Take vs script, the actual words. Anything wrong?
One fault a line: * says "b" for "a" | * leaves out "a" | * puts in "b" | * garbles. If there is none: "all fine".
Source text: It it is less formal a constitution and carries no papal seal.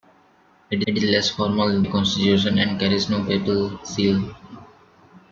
all fine